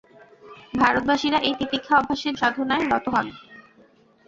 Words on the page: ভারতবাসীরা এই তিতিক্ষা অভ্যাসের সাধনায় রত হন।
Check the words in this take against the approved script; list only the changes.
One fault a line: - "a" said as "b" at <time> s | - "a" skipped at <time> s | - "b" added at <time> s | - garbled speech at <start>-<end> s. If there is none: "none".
none